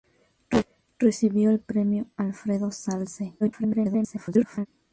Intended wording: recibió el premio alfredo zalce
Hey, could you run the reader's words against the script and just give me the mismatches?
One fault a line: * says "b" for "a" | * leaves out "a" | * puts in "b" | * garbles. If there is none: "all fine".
* garbles